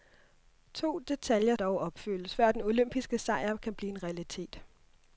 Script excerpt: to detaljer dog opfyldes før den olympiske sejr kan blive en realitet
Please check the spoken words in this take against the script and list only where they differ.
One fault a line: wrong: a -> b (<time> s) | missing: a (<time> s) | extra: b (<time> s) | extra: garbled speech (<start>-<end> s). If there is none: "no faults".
no faults